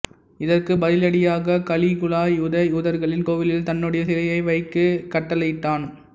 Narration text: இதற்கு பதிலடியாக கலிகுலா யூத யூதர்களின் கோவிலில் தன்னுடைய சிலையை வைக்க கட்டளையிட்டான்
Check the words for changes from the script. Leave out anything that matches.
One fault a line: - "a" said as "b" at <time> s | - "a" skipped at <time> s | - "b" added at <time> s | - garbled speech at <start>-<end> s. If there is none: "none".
none